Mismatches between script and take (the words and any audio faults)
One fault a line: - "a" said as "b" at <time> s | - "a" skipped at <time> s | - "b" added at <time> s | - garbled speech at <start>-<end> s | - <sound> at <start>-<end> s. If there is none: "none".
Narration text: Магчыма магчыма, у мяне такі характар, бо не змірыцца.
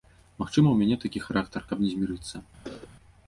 - "магчыма" skipped at 0.7 s
- "бо" said as "каб" at 1.7 s
- cough at 2.6-2.9 s